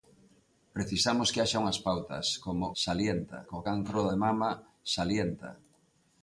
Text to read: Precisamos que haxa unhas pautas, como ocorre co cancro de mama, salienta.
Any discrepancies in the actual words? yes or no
yes